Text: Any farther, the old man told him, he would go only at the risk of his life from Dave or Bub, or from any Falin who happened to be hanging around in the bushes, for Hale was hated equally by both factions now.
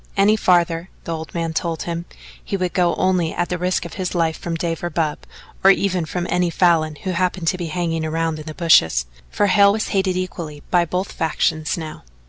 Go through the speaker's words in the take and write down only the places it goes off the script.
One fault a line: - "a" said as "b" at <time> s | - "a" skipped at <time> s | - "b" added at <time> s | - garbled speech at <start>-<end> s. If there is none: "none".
- "even" added at 5.7 s